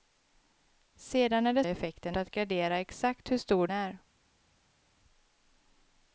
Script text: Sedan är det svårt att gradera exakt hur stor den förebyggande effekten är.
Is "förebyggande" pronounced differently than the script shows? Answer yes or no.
yes